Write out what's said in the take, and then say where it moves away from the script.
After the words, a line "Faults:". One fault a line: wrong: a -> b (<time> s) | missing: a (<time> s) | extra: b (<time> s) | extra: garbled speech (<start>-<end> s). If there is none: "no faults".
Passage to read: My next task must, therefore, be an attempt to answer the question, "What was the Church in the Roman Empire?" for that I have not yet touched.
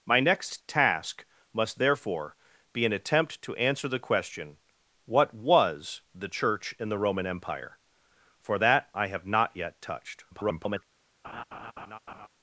My next task must, therefore, be an attempt to answer the question, "What was the Church in the Roman Empire?" for that I have not yet touched. [garbled]
Faults:
extra: garbled speech (10.3-10.8 s)